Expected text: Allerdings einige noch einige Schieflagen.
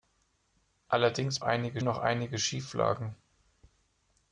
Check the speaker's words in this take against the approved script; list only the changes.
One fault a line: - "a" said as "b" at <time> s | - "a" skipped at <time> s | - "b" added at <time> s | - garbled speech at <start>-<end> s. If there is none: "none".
none